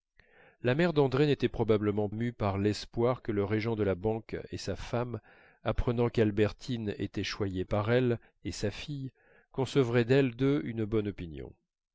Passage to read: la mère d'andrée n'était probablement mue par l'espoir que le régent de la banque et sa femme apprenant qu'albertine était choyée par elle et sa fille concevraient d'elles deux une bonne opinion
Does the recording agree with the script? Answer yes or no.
yes